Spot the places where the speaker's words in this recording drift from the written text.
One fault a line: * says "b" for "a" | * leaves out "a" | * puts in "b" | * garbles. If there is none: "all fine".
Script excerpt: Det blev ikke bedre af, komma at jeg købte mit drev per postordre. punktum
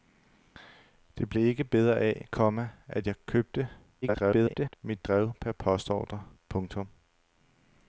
* garbles